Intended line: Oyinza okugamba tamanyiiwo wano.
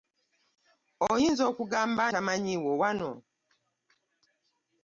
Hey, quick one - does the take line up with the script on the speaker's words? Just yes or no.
yes